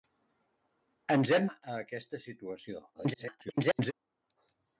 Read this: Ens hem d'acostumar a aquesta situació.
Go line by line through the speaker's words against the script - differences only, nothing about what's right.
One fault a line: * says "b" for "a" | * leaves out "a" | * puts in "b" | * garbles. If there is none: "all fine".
* leaves out "d'acostumar"
* garbles